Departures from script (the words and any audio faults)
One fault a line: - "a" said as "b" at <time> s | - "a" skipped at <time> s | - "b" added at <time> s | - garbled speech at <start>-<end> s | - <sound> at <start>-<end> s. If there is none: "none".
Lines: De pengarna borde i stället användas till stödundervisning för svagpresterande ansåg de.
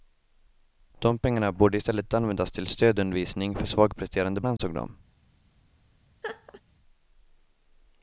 - dropout at 4.6-4.6 s
- laugh at 6.2-6.6 s